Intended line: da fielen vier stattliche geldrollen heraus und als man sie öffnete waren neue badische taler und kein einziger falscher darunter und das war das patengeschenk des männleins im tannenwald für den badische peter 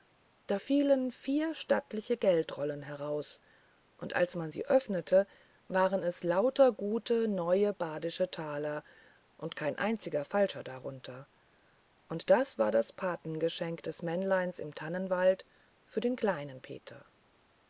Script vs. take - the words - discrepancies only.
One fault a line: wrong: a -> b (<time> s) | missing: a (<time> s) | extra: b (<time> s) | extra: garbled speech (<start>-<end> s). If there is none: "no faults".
extra: es lauter gute (6.0 s)
wrong: badische -> kleinen (16.2 s)